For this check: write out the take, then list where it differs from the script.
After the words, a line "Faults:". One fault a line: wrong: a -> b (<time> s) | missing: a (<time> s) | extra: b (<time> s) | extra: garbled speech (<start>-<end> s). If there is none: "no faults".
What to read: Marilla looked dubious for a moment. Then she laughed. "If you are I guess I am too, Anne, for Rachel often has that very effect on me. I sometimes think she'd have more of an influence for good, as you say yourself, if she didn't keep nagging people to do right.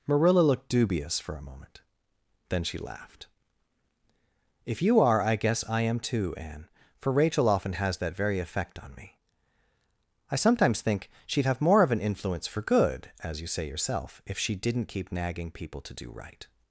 Marilla looked dubious for a moment. Then she laughed. "If you are I guess I am too, Anne, for Rachel often has that very effect on me. I sometimes think she'd have more of an influence for good, as you say yourself, if she didn't keep nagging people to do right.
Faults:
no faults